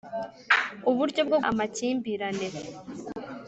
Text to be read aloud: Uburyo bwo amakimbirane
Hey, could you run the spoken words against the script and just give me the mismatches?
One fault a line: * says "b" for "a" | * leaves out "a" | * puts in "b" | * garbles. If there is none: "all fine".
all fine